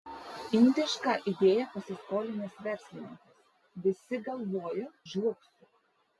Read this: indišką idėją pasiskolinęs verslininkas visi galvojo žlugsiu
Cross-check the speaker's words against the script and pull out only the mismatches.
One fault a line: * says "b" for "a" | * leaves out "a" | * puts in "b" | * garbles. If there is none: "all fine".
all fine